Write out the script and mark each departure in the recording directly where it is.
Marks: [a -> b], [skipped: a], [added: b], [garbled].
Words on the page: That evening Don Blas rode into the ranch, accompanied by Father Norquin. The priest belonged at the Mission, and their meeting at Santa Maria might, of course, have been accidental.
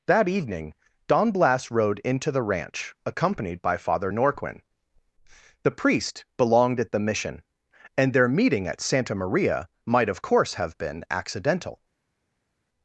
That evening Don Blas rode into the ranch, accompanied by Father Norquin. The priest belonged at the Mission, and their meeting at Santa Maria might, of course, have been accidental.